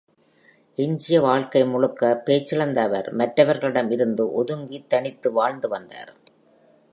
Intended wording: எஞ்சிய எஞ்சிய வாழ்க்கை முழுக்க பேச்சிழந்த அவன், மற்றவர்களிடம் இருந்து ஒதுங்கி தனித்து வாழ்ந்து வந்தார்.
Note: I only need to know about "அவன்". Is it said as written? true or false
false